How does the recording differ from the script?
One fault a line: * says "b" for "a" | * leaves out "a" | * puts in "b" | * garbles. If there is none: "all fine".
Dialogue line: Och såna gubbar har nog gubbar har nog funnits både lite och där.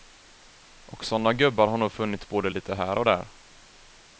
* leaves out "gubbar har nog"
* puts in "här"